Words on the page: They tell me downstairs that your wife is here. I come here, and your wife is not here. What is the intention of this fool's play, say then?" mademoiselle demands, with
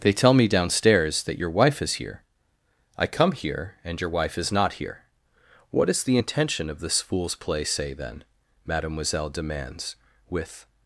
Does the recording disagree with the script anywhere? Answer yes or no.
no